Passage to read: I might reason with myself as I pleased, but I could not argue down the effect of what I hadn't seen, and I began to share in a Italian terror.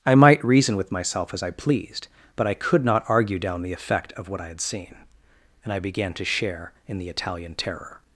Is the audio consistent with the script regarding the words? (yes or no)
no